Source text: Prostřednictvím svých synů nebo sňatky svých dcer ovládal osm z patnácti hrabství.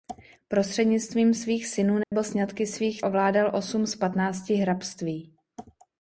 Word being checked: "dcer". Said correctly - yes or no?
no